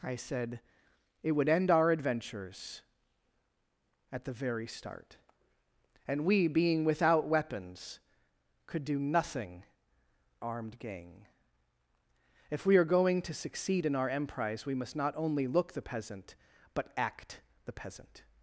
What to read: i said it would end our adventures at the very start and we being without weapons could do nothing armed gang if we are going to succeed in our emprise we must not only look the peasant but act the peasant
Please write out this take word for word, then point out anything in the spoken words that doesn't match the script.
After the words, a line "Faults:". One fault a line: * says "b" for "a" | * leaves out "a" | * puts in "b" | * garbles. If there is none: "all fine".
i said it would end our adventures at the very start and we being without weapons could do nothing armed gang if we are going to succeed in our emprise we must not only look the peasant but act the peasant
Faults:
all fine